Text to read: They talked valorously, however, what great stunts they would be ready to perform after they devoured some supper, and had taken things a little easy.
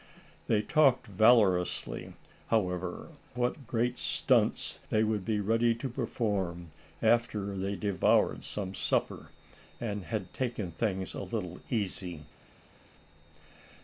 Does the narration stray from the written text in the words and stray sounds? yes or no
no